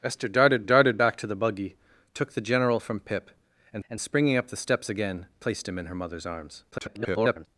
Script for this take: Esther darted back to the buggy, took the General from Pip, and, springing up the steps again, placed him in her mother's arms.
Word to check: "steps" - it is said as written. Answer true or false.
true